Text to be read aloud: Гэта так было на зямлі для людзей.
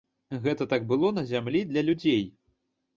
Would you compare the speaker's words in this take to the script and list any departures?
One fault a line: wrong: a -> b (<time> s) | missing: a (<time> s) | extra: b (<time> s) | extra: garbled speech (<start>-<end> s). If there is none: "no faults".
no faults